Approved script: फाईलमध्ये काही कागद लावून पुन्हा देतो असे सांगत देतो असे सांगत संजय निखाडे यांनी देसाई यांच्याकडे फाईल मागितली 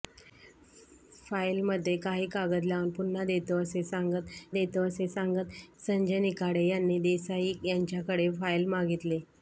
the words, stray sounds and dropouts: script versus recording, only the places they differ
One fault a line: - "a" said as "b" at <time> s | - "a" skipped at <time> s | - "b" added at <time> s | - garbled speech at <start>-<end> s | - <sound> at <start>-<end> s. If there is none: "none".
none